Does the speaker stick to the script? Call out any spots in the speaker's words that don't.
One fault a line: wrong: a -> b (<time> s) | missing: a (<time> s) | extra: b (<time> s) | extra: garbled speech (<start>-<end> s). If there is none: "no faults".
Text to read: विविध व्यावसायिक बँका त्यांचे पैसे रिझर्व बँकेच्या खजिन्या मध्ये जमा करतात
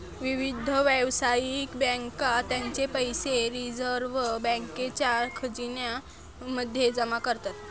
no faults